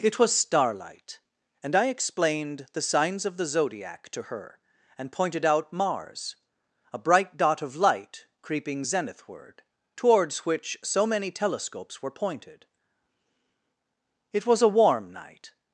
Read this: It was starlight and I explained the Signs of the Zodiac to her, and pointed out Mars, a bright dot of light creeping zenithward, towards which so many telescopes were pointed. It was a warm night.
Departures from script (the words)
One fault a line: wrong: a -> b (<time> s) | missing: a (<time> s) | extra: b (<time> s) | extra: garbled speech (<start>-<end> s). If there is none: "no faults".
no faults